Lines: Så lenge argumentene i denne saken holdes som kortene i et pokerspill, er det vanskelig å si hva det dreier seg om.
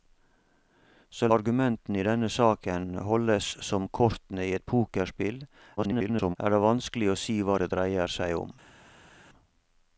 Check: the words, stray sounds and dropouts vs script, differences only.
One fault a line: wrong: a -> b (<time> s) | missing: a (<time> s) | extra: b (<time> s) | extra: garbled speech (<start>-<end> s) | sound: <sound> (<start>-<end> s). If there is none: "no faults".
missing: lenge (1.3 s)
extra: garbled speech (5.8-6.4 s)